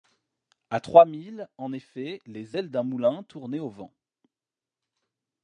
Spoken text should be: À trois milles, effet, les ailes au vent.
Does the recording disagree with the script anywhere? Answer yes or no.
yes